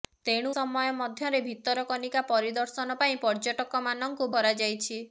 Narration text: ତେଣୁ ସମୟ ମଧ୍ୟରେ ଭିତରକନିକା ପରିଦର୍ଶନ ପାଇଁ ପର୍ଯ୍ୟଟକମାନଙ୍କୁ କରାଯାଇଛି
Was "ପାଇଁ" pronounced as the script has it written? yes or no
yes